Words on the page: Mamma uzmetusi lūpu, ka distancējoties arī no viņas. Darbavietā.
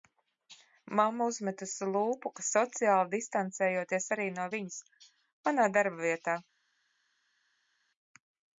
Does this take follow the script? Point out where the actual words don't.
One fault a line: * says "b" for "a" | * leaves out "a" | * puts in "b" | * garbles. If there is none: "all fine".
* puts in "sociāli"
* puts in "Manā"